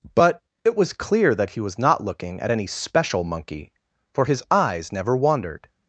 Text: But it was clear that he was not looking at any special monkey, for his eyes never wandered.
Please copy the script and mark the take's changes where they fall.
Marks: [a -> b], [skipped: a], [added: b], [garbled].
But it was clear that he was not looking at any special monkey, for his eyes never wandered.